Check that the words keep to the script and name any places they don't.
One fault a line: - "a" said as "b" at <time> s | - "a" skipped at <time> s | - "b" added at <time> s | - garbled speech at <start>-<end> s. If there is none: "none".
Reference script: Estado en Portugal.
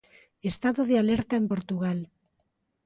- "de alerta" added at 0.8 s